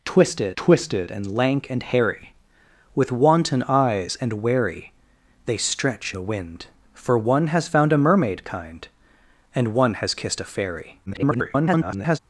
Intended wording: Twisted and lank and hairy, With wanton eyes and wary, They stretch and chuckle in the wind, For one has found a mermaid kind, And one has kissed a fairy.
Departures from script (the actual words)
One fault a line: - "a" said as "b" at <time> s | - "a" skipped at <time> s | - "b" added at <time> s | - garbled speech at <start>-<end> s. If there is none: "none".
- "twisted" added at 0.6 s
- "and chuckle in" skipped at 6.1 s
- garbled speech at 11.1-12.2 s